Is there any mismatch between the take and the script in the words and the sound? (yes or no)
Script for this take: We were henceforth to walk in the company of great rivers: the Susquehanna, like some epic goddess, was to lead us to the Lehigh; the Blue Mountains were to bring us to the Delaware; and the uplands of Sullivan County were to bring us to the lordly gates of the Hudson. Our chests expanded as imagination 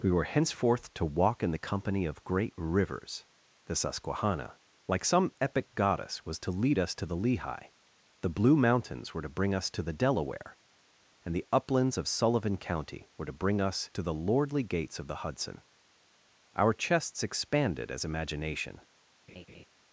yes